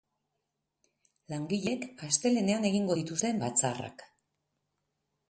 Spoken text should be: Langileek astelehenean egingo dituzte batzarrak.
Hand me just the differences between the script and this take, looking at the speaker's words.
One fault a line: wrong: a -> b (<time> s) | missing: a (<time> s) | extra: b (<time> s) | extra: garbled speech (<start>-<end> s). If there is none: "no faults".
no faults